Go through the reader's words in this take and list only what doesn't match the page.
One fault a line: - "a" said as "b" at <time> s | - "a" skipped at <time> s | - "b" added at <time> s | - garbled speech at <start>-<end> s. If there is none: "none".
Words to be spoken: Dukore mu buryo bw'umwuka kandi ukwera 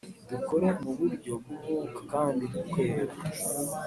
none